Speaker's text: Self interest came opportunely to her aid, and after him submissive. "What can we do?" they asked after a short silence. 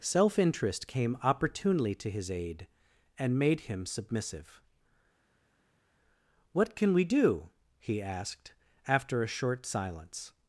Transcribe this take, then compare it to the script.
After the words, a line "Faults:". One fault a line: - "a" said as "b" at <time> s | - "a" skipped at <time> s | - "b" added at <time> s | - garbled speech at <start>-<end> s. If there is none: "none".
Self interest came opportunely to his aid, and made him submissive. "What can we do?" he asked after a short silence.
Faults:
- "her" said as "his" at 2.1 s
- "after" said as "made" at 3.4 s
- "they" said as "he" at 7.8 s